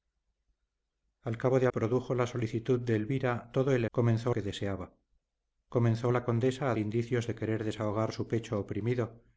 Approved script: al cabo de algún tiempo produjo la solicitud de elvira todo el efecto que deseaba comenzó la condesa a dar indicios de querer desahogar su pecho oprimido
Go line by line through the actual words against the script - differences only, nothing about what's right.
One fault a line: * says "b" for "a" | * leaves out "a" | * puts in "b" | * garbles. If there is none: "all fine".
* leaves out "algún tiempo"
* says "comenzó" for "efecto"
* leaves out "dar"